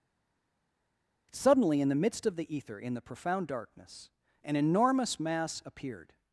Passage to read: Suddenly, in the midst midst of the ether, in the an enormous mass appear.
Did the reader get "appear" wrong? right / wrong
wrong